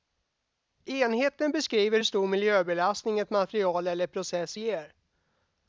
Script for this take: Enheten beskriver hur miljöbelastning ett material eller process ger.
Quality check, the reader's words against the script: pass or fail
fail